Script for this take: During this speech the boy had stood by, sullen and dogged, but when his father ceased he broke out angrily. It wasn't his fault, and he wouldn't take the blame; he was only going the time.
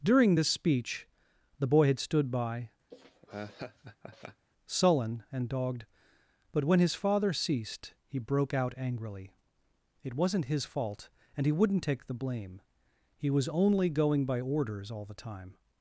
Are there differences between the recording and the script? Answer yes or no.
yes